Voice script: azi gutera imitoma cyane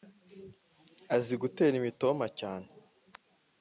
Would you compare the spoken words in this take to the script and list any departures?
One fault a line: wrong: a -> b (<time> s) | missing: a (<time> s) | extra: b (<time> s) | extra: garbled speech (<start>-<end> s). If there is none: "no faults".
no faults